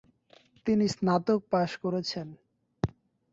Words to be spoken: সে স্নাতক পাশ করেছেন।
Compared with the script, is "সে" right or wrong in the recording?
wrong